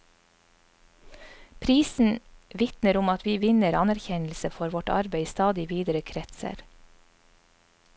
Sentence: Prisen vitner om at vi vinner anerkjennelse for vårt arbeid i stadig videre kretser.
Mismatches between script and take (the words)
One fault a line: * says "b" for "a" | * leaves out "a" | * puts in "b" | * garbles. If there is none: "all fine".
all fine